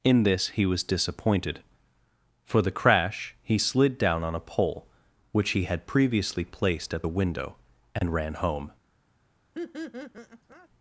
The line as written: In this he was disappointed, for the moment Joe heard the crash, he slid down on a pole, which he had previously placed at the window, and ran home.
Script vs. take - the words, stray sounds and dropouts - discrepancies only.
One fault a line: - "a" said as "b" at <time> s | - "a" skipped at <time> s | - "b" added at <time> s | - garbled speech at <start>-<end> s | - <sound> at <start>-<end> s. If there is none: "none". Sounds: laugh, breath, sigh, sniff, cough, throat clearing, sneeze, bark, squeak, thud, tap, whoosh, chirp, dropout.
- "moment Joe heard the" skipped at 2.7 s
- laugh at 9.5-10.7 s